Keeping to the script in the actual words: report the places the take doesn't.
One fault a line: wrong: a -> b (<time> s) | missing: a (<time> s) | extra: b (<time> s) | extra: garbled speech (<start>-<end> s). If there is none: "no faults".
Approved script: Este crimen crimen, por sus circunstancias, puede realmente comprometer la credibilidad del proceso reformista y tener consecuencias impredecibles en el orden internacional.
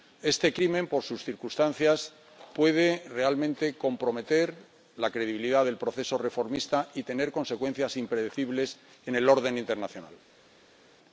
missing: crimen (0.9 s)